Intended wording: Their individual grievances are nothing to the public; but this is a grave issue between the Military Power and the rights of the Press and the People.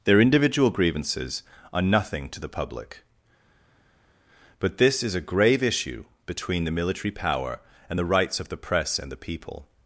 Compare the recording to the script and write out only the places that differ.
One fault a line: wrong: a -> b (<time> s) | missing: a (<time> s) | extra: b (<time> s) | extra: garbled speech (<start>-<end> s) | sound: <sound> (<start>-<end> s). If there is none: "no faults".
no faults